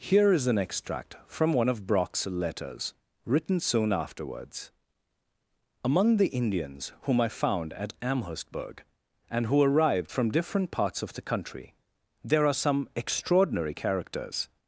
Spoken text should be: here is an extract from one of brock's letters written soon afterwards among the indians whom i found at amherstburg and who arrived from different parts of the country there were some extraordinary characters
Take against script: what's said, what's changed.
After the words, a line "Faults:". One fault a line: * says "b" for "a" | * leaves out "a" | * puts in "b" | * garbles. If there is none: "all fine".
here is an extract from one of brock's letters written soon afterwards among the indians whom i found at amherstburg and who arrived from different parts of the country there are some extraordinary characters
Faults:
* says "are" for "were"